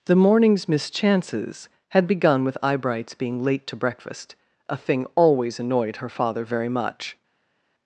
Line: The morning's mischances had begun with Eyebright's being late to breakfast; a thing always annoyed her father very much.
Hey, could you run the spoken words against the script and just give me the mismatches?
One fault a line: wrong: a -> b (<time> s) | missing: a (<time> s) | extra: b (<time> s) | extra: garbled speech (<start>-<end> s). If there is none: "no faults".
no faults